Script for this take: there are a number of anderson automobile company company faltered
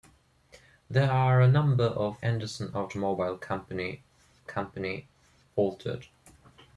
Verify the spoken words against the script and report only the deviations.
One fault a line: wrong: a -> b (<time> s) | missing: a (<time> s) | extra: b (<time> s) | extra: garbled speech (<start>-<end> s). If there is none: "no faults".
no faults